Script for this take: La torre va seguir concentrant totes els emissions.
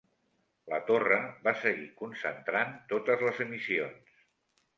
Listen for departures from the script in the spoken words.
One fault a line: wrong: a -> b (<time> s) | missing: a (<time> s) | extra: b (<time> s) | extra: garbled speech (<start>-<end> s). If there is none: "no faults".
wrong: els -> les (3.3 s)